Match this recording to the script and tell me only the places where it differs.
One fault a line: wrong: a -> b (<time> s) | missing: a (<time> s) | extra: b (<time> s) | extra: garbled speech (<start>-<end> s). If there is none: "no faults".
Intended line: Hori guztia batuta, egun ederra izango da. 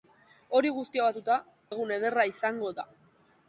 no faults